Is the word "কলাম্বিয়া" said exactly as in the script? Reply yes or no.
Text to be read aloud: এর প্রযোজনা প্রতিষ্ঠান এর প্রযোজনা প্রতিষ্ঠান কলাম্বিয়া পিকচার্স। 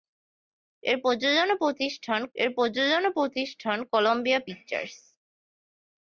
yes